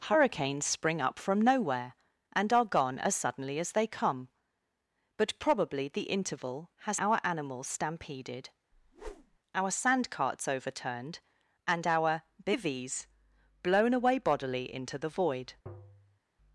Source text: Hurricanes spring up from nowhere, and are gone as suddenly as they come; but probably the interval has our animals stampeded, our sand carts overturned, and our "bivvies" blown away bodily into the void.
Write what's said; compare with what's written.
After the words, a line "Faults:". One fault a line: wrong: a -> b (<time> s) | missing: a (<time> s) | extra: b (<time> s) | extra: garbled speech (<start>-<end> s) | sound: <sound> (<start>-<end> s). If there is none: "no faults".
Hurricanes spring up from nowhere, and are gone as suddenly as they come; but probably the interval has our animals stampeded, our sand carts overturned, and our "bivvies" blown away bodily into the void.
Faults:
sound: whoosh (8.7-9.4 s)
sound: tap (15.7-16.2 s)